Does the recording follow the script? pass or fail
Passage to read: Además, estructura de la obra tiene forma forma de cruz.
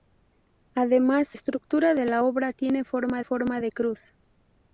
pass